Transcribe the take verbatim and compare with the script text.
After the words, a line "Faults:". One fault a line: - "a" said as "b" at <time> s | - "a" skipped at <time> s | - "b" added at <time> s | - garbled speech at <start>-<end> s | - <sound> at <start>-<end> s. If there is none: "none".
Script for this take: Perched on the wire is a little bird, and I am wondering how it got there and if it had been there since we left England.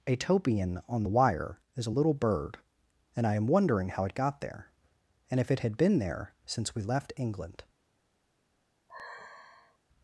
Atopian on the wire is a little bird, and I am wondering how it got there and if it had been there since we left England.
Faults:
- "Perched" said as "Atopian" at 0.1 s
- sigh at 8.9-9.8 s